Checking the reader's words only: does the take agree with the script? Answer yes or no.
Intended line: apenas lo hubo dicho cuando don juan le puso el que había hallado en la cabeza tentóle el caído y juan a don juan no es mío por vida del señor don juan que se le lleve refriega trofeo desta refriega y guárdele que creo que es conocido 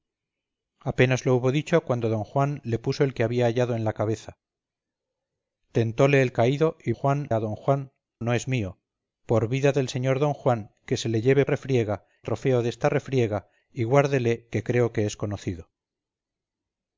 yes